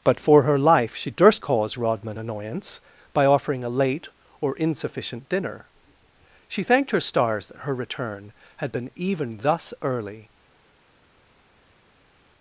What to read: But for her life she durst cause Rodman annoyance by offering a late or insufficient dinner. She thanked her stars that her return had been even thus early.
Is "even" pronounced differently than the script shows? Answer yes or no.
no